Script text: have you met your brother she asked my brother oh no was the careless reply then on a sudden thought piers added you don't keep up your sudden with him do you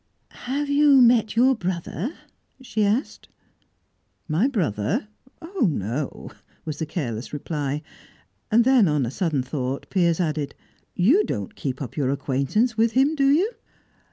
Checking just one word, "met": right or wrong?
right